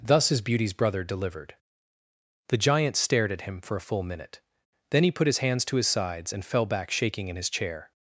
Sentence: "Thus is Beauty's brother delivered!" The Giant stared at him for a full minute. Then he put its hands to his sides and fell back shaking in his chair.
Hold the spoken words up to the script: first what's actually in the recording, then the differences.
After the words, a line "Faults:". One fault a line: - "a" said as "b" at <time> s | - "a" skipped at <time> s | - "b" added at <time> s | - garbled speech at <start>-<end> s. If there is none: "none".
"Thus is Beauty's brother delivered!" The Giant stared at him for a full minute. Then he put his hands to his sides and fell back shaking in his chair.
Faults:
- "its" said as "his" at 5.3 s